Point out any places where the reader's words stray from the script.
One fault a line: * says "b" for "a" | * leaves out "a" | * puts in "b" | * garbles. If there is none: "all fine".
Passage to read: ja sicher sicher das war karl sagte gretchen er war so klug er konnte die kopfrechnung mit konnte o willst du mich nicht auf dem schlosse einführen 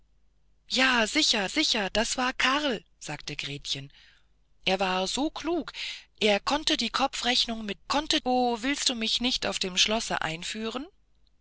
all fine